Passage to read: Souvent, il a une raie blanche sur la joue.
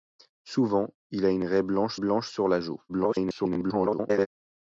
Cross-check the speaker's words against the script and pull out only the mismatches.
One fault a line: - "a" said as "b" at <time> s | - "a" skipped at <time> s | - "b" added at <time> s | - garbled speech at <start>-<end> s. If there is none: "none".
- "blanche" added at 1.9 s
- garbled speech at 2.9-4.3 s